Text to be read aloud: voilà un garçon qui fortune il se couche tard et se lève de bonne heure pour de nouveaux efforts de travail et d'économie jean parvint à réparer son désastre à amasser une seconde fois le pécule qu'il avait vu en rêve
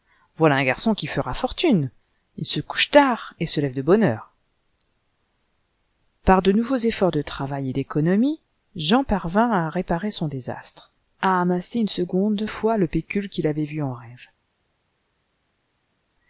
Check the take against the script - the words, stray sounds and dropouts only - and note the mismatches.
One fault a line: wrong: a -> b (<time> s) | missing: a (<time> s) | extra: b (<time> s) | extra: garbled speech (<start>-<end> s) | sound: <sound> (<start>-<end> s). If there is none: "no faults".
extra: fera (1.1 s)
wrong: pour -> par (6.2 s)